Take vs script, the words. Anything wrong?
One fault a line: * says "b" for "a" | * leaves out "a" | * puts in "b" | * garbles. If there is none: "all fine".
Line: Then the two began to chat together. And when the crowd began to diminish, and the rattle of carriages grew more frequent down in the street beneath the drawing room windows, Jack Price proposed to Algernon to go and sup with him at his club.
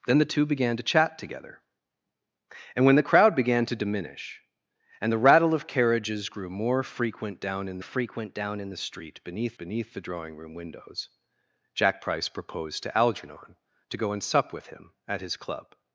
* puts in "frequent down in"
* puts in "beneath"